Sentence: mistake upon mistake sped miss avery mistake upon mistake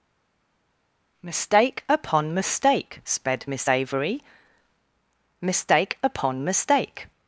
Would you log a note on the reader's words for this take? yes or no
no